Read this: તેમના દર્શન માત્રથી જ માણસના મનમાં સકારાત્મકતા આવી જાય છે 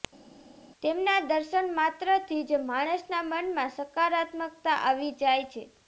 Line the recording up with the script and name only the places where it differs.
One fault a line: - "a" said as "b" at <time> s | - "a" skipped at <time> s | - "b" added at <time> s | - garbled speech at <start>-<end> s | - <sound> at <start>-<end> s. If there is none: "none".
none